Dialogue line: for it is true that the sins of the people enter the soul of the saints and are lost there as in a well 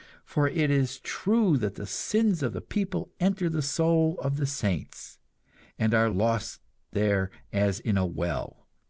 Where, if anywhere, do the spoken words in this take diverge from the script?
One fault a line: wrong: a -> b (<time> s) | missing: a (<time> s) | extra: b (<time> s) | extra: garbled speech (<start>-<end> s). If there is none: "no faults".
no faults